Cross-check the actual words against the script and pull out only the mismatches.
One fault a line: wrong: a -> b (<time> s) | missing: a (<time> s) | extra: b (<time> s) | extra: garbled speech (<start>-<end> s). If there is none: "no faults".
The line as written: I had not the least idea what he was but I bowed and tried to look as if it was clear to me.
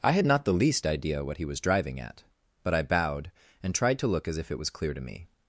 extra: driving at (1.6 s)